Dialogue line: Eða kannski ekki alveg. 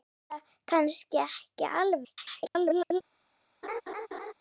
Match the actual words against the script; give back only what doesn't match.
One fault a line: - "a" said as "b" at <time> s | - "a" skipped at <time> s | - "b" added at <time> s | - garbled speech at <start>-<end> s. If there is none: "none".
- garbled speech at 2.0-3.0 s